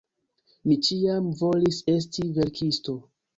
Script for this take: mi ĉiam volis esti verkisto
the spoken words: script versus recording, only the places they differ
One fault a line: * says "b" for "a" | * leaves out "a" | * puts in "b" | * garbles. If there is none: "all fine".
all fine